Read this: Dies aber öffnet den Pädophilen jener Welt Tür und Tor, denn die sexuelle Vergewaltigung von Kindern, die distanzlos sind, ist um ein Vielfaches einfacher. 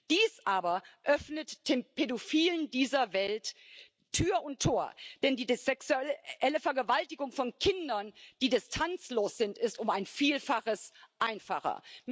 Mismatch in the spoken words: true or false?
true